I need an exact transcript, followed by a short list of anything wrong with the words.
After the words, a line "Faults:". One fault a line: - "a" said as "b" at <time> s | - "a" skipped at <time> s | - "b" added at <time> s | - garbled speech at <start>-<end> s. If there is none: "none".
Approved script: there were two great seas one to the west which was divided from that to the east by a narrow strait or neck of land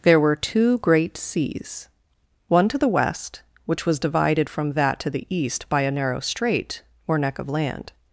there were two great seas one to the west which was divided from that to the east by a narrow strait or neck of land
Faults:
none